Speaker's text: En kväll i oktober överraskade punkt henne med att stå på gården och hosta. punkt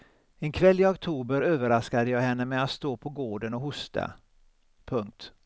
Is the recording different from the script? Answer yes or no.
yes